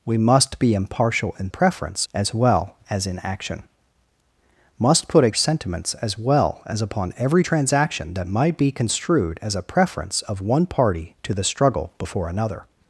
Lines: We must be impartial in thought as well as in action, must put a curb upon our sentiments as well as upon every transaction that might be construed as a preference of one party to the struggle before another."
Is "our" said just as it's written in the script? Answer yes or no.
no